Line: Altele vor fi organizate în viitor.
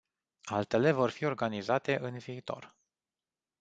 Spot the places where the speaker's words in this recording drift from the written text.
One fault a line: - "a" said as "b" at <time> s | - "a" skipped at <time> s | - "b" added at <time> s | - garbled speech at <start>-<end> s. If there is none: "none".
none